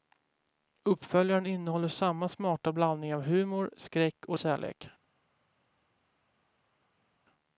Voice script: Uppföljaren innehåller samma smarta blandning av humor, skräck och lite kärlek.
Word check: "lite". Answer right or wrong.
wrong